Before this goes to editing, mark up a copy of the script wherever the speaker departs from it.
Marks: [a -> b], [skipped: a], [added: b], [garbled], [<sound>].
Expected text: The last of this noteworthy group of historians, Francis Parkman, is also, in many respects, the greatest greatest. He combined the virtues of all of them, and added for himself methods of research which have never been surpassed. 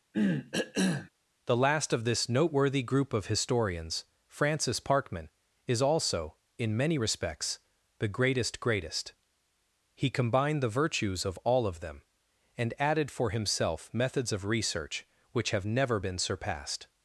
[cough] The last of this noteworthy group of historians, Francis Parkman, is also, in many respects, the greatest greatest. He combined the virtues of all of them, and added for himself methods of research which have never been surpassed.